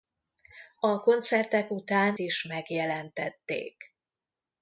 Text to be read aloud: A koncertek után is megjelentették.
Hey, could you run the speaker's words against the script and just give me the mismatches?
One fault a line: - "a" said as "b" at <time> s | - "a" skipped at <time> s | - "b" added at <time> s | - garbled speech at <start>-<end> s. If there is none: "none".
none